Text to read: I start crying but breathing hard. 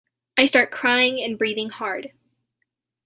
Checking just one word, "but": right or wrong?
wrong